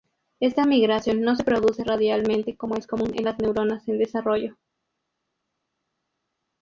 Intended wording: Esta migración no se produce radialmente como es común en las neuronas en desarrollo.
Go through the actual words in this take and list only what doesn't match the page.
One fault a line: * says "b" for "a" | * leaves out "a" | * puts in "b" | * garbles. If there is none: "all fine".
all fine